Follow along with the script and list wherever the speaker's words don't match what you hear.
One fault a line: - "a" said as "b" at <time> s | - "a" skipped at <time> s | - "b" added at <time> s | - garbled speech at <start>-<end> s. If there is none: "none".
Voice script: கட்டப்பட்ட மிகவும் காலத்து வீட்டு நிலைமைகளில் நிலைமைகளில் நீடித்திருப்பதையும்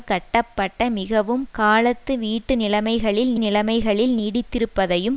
none